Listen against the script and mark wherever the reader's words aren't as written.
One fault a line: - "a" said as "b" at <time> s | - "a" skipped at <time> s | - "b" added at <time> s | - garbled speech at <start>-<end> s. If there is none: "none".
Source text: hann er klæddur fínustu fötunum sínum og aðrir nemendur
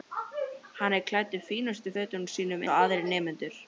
none